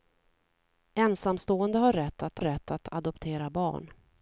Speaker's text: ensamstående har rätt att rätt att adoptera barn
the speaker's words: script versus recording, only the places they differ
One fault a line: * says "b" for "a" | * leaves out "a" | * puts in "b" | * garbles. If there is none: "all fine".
all fine